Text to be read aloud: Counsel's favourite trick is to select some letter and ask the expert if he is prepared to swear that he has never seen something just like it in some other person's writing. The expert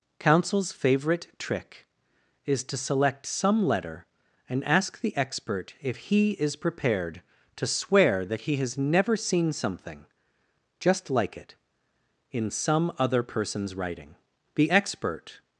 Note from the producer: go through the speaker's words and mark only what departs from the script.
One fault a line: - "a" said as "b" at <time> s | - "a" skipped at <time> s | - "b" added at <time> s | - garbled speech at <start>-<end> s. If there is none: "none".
none